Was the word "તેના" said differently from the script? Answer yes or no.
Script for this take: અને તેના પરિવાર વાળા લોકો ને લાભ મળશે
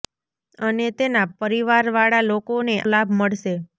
no